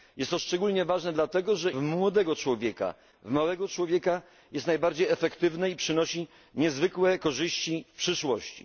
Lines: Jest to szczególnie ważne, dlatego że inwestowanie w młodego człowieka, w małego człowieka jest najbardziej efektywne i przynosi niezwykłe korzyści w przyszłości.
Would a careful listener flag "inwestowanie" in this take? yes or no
yes